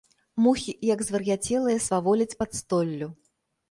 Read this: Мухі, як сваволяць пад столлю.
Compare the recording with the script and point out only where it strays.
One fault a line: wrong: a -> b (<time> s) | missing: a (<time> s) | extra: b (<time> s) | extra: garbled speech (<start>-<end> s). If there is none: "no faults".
extra: звар'яцелыя (1.1 s)